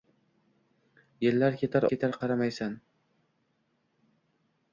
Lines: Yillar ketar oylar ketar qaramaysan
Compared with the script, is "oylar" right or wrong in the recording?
wrong